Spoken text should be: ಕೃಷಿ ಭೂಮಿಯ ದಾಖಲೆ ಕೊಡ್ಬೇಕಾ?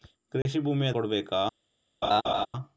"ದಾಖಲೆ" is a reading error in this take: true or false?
true